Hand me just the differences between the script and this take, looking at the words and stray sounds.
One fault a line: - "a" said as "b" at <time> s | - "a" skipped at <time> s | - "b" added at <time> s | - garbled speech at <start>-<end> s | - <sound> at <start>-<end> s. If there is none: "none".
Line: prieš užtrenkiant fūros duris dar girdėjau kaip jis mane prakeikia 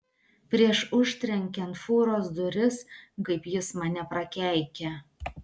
- "dar girdėjau" skipped at 2.8 s